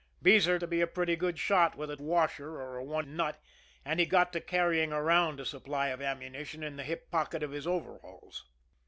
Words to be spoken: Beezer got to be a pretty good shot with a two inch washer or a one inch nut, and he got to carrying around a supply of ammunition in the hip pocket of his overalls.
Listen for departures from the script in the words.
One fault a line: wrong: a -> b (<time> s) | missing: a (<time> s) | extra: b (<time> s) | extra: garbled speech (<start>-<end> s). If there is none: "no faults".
missing: got (0.6 s)
missing: two inch (2.0 s)
missing: inch (3.1 s)